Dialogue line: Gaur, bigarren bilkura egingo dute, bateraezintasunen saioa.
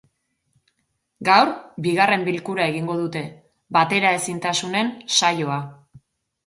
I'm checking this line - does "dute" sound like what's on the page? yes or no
yes